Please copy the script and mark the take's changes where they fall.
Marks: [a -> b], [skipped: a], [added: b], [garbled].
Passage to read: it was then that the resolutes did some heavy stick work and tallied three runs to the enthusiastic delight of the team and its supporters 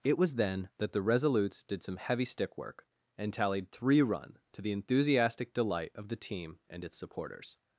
it was then that the resolutes did some heavy stick work and tallied three [runs -> run] to the enthusiastic delight of the team and its supporters